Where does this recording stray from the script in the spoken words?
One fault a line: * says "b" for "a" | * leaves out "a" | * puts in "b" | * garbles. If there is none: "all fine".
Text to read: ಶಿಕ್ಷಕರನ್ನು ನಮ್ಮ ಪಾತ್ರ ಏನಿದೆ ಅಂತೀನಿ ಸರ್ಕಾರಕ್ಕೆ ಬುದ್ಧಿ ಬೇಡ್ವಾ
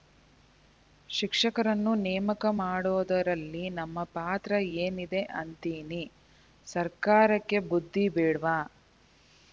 * puts in "ನೇಮಕ ಮಾಡೋದರಲ್ಲಿ"